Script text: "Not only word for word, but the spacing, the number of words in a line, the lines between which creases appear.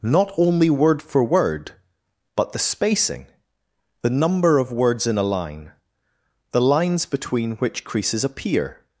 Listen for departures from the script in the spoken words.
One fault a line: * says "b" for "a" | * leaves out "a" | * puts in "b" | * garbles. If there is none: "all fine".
all fine